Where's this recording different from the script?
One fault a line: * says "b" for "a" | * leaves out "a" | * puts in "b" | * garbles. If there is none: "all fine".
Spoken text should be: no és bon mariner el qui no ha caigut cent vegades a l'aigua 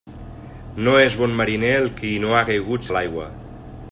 * leaves out "cent vegades"